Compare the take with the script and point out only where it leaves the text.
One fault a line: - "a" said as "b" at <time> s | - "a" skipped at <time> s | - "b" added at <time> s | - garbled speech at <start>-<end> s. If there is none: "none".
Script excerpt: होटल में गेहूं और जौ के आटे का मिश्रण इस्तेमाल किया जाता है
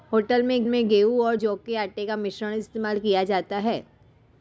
- "में" added at 0.7 s